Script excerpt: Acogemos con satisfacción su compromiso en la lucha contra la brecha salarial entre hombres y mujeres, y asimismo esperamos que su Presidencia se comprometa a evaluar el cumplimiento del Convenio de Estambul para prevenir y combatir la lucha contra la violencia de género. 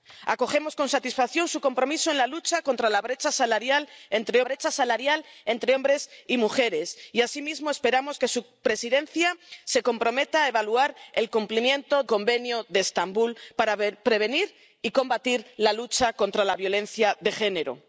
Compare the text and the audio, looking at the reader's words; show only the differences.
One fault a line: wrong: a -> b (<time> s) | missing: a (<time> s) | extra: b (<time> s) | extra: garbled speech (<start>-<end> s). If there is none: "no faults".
extra: brecha salarial entre (4.4 s)
missing: del (12.0 s)